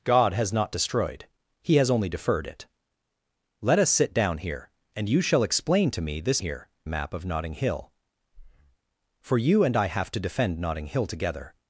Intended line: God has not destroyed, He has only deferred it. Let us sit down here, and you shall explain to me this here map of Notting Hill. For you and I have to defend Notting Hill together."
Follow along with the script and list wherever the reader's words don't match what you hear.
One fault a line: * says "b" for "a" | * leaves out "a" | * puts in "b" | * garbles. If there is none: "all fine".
all fine